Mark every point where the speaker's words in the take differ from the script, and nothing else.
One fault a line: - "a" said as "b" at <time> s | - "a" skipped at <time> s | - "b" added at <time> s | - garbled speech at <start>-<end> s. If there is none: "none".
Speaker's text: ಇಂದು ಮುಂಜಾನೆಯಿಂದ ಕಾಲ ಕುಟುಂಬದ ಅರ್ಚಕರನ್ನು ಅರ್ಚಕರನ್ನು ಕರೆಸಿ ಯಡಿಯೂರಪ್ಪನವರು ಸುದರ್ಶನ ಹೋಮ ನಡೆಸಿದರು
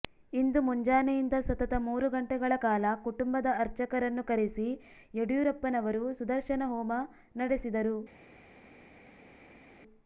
- "ಸತತ ಮೂರು ಗಂಟೆಗಳ" added at 1.5 s
- "ಅರ್ಚಕರನ್ನು" skipped at 4.2 s